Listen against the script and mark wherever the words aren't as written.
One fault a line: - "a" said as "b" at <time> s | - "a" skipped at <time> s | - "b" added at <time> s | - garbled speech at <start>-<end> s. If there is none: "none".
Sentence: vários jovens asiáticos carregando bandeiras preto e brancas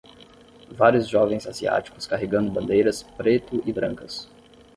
none